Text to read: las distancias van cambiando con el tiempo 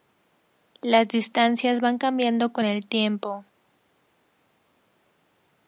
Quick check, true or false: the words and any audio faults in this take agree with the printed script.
true